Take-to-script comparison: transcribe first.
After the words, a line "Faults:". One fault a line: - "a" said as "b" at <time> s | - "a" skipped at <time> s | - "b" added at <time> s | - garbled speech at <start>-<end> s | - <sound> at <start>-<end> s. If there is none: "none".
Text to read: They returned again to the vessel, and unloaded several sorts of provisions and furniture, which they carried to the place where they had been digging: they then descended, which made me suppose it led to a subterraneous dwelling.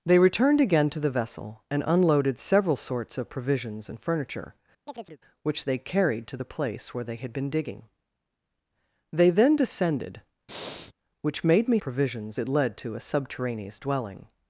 They returned again to the vessel, and unloaded several sorts of provisions and furniture, which they carried to the place where they had been digging: they then descended, which made me provisions it led to a subterraneous dwelling.
Faults:
- chirp at 4.9-5.2 s
- breath at 10.5-10.9 s
- "suppose" said as "provisions" at 11.8 s